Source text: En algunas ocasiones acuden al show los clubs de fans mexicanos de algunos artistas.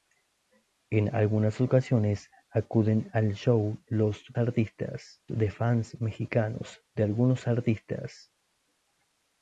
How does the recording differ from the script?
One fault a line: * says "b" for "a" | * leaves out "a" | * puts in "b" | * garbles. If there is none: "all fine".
* says "artistas" for "clubs"